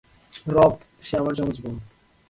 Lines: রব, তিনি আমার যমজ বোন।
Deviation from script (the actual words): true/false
true